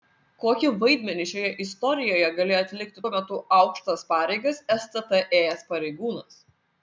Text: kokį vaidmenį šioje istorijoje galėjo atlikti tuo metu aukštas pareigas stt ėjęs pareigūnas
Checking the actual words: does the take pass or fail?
pass